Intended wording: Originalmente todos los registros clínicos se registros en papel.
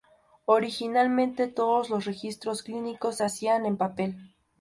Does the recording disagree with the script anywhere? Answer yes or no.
yes